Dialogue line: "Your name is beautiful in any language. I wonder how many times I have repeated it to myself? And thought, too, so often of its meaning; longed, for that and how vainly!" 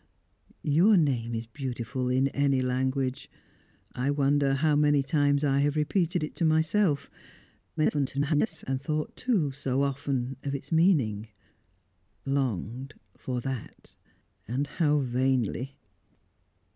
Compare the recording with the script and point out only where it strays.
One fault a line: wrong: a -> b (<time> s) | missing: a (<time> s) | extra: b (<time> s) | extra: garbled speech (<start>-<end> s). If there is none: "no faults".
extra: garbled speech (7.8-8.6 s)